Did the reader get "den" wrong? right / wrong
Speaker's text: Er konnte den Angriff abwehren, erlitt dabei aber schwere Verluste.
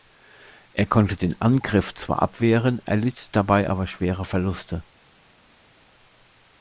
right